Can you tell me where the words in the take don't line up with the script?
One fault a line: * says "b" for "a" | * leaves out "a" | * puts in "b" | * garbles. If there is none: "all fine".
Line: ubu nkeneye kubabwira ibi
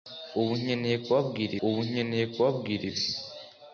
* puts in "ubu nkeneye kubabwira"